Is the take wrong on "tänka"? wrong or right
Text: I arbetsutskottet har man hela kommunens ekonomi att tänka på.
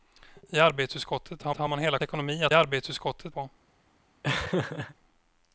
wrong